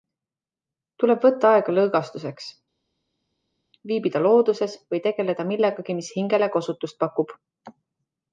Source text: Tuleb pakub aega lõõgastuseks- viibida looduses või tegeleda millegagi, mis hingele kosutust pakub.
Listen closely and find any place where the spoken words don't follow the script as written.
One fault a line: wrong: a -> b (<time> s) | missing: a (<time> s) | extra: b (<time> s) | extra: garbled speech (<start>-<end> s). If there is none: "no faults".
wrong: pakub -> võtta (1.3 s)